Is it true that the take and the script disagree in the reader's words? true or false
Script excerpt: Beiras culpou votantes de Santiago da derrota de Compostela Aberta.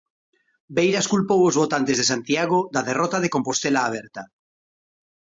true